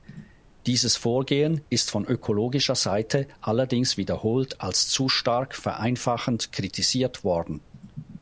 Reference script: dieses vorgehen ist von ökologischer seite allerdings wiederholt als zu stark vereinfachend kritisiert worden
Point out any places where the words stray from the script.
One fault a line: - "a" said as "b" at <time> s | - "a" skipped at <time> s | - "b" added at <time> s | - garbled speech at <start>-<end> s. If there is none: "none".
none